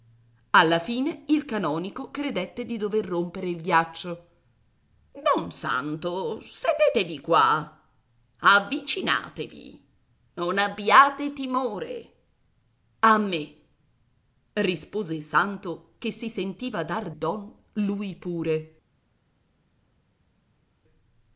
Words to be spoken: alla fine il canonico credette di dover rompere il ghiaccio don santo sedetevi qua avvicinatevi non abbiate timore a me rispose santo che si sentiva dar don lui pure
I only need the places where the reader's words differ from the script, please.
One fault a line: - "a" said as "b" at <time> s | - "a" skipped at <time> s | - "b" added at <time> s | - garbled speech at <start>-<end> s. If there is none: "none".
none